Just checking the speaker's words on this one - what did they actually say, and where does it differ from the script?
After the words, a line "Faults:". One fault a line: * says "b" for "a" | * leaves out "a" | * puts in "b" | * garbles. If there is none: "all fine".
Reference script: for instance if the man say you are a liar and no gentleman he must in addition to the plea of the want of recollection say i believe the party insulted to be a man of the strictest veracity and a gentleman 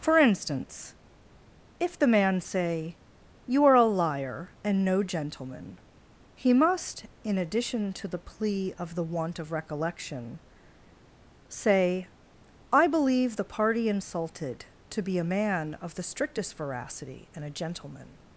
for instance if the man say you are a liar and no gentleman he must in addition to the plea of the want of recollection say i believe the party insulted to be a man of the strictest veracity and a gentleman
Faults:
all fine